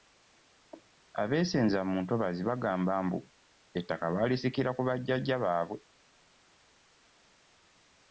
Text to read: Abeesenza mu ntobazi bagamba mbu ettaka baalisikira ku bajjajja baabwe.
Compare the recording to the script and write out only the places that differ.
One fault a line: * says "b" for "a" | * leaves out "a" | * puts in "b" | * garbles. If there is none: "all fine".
all fine